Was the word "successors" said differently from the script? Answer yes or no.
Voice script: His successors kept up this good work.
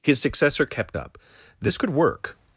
yes